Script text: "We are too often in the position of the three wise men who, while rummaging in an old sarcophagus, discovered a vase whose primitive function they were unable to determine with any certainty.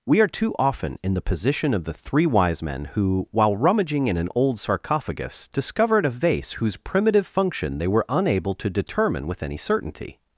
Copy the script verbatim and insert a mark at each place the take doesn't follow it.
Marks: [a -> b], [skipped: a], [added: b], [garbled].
"We are too often in the position of the three wise men who, while rummaging in an old sarcophagus, discovered a vase whose primitive function they were unable to determine with any certainty.